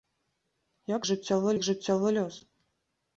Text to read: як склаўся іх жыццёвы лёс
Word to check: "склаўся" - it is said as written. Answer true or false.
false